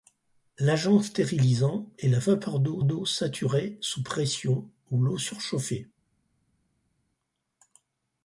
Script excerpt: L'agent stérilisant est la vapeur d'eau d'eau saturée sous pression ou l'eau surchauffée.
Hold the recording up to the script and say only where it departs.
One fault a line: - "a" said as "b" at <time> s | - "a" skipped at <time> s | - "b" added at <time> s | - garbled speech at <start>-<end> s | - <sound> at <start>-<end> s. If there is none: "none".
none